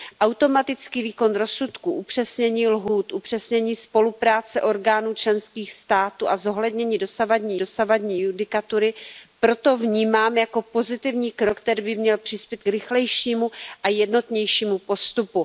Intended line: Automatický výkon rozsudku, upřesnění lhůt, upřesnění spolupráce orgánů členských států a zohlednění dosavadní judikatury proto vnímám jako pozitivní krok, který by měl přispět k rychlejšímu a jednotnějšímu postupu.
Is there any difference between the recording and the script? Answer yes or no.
yes